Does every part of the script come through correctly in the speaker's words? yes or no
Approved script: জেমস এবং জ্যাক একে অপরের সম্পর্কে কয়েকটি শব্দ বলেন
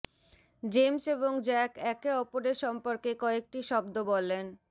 yes